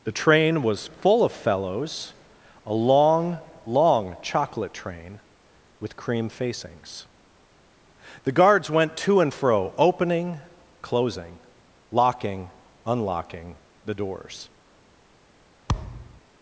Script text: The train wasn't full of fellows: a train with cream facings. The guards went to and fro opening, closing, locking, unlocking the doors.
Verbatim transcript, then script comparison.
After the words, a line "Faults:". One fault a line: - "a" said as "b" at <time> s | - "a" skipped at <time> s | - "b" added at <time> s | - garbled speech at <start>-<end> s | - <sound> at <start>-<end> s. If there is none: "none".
The train was full of fellows: a long long chocolate train with cream facings. The guards went to and fro opening, closing, locking, unlocking the doors.
Faults:
- "wasn't" said as "was" at 0.6 s
- "long long chocolate" added at 2.7 s
- thud at 15.7-16.2 s